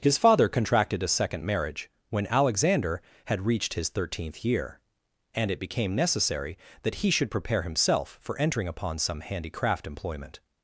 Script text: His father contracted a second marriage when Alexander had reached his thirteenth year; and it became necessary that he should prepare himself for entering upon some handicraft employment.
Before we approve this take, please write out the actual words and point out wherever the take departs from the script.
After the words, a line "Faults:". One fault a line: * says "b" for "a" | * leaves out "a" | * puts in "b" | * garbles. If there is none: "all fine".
His father contracted a second marriage when Alexander had reached his thirteenth year; and it became necessary that he should prepare himself for entering upon some handicraft employment.
Faults:
all fine